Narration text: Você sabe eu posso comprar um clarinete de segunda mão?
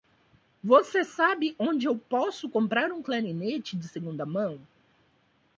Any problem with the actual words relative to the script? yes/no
yes